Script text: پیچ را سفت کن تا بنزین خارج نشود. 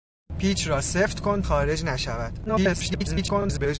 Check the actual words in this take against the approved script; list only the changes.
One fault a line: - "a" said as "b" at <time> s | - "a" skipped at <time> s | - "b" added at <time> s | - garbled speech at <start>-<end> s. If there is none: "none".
- "تا بنزین" skipped at 1.4 s
- garbled speech at 2.5-3.8 s